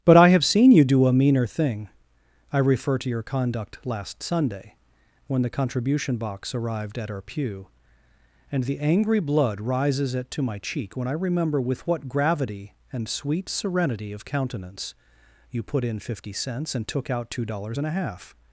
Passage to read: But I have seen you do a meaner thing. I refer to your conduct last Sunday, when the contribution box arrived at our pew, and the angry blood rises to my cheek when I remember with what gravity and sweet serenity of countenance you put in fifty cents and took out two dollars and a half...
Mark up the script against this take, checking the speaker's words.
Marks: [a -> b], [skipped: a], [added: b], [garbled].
But I have seen you do a meaner thing. I refer to your conduct last Sunday, when the contribution box arrived at our pew, and the angry blood rises [added: it] to my cheek when I remember with what gravity and sweet serenity of countenance you put in fifty cents and took out two dollars and a half...